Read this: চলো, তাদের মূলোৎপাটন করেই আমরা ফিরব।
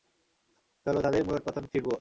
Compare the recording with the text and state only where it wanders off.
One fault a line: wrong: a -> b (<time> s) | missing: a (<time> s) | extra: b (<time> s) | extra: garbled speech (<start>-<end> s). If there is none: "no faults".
missing: করেই আমরা (1.6 s)